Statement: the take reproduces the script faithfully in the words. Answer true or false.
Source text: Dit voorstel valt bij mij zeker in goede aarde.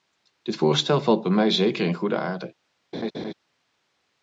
true